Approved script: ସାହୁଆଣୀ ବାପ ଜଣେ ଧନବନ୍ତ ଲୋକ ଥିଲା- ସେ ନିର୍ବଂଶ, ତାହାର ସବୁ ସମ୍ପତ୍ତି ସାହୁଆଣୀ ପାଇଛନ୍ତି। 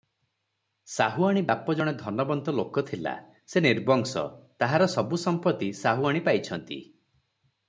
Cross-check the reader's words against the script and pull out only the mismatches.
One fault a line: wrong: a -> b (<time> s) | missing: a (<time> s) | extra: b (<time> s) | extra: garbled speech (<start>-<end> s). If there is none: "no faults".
no faults